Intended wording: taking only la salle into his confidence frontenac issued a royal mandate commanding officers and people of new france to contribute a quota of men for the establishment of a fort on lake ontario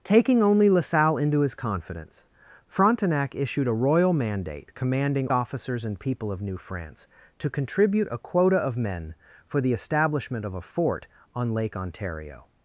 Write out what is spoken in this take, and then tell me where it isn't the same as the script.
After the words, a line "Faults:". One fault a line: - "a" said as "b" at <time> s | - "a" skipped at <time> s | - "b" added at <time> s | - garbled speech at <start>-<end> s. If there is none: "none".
taking only la salle into his confidence frontenac issued a royal mandate commanding officers and people of new france to contribute a quota of men for the establishment of a fort on lake ontario
Faults:
none